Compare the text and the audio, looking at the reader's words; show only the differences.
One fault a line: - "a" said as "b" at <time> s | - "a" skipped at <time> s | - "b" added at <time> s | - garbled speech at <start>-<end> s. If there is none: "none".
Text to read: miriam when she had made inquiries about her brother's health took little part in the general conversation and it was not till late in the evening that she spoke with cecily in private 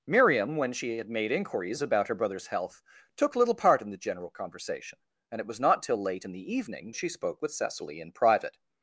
- "that" skipped at 6.9 s